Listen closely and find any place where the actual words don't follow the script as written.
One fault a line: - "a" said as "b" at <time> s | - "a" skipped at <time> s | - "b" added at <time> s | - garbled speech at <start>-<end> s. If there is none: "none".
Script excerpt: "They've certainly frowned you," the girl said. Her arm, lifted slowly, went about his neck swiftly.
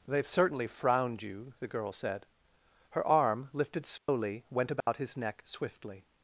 none